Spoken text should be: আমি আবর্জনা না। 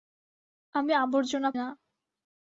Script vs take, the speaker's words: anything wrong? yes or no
no